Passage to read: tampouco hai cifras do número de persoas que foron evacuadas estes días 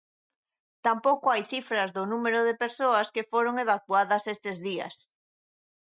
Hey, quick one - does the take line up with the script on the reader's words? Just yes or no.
yes